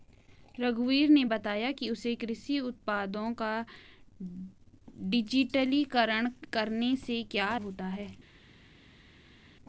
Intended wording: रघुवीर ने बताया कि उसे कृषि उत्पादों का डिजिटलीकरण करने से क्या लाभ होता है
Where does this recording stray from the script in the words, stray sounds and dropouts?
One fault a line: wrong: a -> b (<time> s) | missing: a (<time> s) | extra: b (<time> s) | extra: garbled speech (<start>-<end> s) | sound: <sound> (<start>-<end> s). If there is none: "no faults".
missing: लाभ (7.6 s)